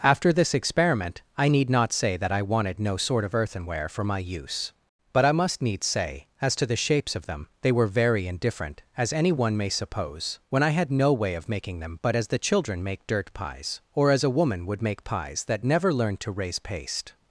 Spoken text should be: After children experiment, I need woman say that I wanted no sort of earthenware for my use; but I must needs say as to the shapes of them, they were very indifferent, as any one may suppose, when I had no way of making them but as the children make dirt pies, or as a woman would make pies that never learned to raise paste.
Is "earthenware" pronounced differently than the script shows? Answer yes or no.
no